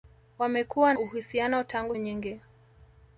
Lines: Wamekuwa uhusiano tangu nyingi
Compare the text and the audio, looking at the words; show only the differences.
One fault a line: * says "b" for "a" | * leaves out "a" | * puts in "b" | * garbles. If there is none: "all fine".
all fine